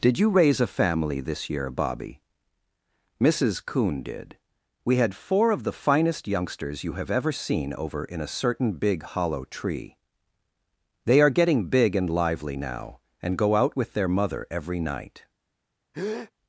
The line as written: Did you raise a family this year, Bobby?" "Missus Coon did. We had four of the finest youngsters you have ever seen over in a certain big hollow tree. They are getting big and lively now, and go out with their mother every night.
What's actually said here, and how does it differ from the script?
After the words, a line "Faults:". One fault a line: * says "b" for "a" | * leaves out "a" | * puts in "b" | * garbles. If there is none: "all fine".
Did you raise a family this year, Bobby?" "Missus Coon did. We had four of the finest youngsters you have ever seen over in a certain big hollow tree. They are getting big and lively now, and go out with their mother every night.
Faults:
all fine